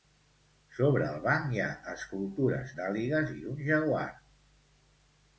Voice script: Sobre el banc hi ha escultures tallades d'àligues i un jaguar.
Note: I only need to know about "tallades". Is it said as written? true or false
false